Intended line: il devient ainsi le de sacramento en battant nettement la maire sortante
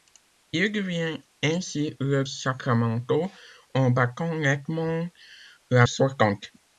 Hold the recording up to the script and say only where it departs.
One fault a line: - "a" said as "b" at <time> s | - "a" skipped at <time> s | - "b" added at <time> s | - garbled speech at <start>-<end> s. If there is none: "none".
- "de" skipped at 2.2 s
- "maire" skipped at 5.9 s